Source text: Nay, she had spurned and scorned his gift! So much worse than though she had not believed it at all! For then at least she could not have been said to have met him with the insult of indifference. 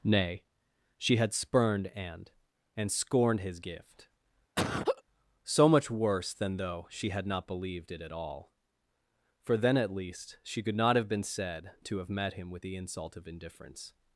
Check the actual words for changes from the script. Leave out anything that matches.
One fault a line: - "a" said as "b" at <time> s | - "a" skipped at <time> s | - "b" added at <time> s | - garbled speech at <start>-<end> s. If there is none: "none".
- "and" added at 2.7 s